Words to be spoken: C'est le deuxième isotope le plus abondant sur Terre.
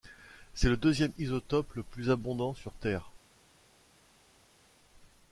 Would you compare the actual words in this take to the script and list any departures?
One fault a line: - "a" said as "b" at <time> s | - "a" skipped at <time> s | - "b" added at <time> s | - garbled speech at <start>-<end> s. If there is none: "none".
none